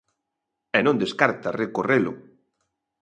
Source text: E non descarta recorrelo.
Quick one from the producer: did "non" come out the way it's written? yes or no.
yes